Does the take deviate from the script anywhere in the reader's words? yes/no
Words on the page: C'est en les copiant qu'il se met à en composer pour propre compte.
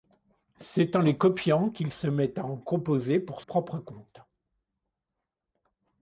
no